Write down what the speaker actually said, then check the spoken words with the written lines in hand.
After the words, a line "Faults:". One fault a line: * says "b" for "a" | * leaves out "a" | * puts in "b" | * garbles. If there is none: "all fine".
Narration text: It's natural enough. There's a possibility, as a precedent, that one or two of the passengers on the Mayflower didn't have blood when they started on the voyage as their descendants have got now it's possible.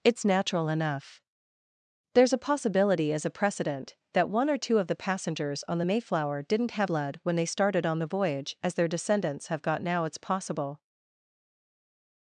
It's natural enough. There's a possibility, as a precedent, that one or two of the passengers on the Mayflower didn't have blood when they started on the voyage as their descendants have got now it's possible.
Faults:
all fine